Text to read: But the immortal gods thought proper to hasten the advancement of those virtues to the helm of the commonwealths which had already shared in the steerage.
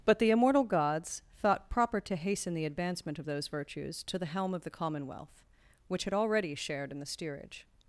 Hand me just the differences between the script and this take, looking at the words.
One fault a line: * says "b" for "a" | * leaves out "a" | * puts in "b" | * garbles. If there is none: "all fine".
* says "commonwealth" for "commonwealths"